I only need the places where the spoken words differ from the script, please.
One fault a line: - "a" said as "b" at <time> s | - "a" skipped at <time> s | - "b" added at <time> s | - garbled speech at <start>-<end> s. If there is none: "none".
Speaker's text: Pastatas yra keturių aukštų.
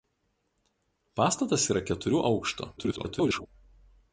- garbled speech at 2.8-3.5 s